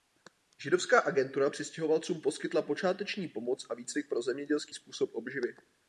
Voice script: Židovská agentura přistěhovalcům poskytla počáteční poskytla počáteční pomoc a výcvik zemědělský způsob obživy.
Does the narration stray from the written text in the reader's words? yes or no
yes